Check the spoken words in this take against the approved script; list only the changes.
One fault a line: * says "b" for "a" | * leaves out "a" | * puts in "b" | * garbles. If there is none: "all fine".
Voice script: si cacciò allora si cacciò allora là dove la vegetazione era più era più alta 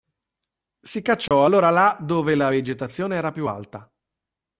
* leaves out "si cacciò allora"
* leaves out "era più"